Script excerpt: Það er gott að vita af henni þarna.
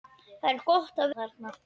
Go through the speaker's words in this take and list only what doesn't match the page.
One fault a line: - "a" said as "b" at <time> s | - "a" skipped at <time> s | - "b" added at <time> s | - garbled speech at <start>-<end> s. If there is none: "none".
- "vita af henni" skipped at 1.2 s